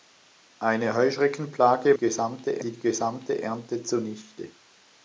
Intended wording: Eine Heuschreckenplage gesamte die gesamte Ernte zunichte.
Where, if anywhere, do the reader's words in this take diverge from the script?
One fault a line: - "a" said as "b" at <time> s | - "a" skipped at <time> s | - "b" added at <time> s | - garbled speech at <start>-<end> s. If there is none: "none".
none